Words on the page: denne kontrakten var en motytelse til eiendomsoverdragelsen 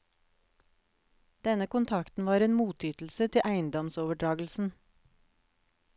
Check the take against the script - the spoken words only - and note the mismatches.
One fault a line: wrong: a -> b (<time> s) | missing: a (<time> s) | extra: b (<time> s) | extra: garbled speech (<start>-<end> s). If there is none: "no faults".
no faults